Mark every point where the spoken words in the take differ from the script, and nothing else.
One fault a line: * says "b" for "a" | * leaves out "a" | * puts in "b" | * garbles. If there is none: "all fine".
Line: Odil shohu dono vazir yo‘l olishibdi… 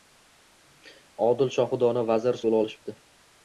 all fine